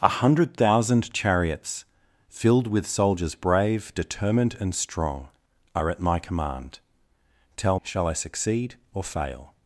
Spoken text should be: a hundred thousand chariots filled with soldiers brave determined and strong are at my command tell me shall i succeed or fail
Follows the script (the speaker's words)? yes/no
no